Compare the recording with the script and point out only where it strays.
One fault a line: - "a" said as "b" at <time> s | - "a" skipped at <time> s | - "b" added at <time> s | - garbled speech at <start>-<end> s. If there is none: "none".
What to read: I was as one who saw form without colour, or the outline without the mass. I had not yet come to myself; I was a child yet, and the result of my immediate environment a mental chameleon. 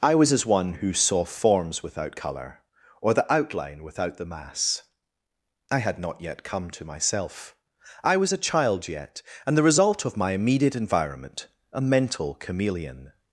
- "form" said as "forms" at 1.2 s